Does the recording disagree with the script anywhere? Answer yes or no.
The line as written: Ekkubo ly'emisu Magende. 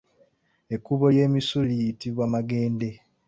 yes